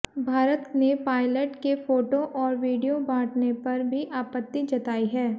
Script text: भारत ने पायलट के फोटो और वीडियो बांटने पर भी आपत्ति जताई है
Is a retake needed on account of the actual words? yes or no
no